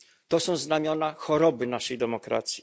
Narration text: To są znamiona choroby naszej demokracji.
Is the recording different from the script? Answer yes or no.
no